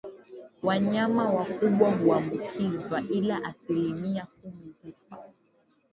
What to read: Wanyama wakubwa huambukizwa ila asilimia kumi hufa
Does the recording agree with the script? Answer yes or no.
yes